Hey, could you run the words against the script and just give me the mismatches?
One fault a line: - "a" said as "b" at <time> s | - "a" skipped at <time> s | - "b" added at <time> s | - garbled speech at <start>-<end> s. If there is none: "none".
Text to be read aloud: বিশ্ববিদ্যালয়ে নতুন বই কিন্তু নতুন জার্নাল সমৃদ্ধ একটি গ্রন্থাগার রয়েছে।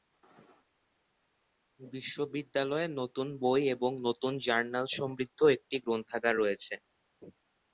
- "কিন্তু" said as "এবং" at 3.8 s